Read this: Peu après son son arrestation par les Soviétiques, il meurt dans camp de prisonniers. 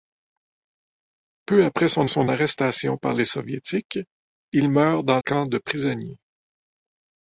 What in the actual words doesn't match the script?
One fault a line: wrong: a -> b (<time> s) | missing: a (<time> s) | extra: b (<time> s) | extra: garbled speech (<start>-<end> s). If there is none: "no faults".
no faults